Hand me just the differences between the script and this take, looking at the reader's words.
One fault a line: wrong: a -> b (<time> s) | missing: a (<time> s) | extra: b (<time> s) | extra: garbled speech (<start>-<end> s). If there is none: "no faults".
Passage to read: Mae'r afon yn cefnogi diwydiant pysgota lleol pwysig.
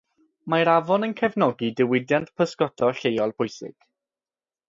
no faults